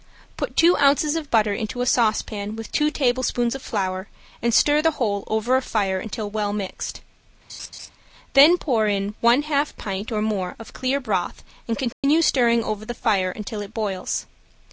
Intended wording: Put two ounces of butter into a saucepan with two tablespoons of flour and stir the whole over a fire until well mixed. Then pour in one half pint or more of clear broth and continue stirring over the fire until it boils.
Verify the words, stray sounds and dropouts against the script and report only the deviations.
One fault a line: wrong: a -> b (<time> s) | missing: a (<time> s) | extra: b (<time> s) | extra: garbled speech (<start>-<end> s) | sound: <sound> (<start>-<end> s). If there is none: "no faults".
sound: laugh (7.5-7.9 s)
sound: dropout (11.9-12.0 s)